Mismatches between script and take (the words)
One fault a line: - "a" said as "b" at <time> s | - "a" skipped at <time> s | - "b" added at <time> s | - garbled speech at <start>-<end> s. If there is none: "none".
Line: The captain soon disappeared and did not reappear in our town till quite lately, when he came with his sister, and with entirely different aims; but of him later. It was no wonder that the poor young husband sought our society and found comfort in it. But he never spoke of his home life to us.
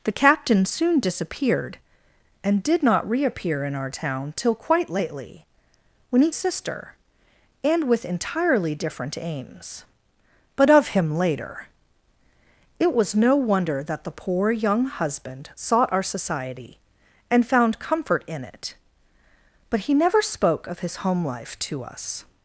- "came with his" skipped at 6.3 s